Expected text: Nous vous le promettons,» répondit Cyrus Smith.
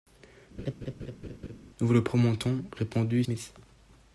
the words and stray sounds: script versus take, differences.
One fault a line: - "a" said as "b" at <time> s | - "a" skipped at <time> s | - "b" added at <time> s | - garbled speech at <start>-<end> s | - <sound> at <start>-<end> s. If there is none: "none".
- laugh at 0.6-1.6 s
- "Cyrus" skipped at 3.2 s